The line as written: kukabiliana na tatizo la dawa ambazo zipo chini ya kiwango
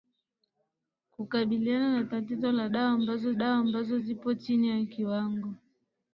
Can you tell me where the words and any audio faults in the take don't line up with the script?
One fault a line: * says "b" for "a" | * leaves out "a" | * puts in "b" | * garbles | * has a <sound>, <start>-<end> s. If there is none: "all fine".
* puts in "dawa ambazo"